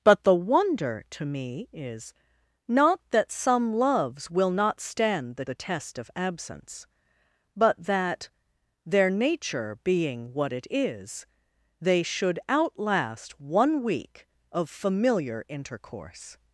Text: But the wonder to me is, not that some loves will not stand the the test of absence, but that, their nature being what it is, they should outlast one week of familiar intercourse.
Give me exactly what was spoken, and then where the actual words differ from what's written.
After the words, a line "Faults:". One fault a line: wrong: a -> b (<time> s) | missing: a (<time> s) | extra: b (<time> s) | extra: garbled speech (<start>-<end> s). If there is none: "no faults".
But the wonder to me is, not that some loves will not stand the the test of absence, but that, their nature being what it is, they should outlast one week of familiar intercourse.
Faults:
no faults